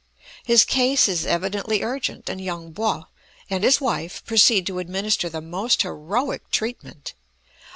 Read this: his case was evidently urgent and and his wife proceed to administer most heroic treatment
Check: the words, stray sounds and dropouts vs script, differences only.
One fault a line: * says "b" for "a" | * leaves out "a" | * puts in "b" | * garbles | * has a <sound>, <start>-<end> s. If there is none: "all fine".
* says "is" for "was"
* puts in "yung po"
* puts in "the"